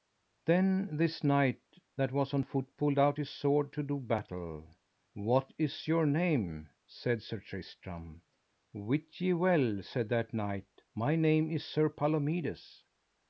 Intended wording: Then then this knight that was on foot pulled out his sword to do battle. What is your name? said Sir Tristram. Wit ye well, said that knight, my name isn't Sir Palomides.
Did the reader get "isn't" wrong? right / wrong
wrong